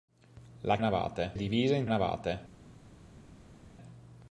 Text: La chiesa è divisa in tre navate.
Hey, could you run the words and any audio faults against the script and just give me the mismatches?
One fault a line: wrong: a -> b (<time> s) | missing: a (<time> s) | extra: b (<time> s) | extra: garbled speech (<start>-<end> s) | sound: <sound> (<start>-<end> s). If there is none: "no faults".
wrong: chiesa -> navate (0.8 s)
missing: tre (1.8 s)